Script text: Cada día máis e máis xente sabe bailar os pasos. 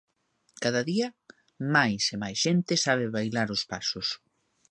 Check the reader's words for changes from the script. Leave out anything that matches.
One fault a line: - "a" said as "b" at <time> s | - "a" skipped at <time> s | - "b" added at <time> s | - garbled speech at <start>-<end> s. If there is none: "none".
none